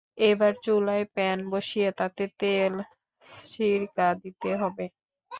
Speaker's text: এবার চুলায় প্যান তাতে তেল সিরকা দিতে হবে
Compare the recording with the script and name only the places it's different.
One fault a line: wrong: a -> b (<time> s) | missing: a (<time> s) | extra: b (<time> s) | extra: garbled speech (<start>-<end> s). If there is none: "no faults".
extra: বসিয়ে (1.5 s)